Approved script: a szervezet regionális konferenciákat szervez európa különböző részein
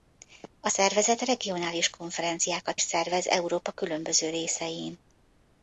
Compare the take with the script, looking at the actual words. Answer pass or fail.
pass